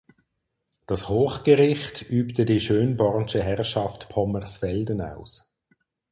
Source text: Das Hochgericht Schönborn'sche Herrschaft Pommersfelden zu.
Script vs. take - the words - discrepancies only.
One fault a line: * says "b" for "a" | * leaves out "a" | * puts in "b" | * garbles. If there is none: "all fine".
* puts in "übte die"
* says "aus" for "zu"